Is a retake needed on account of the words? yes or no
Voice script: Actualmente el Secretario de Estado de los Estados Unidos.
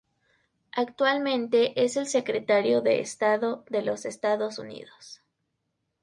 yes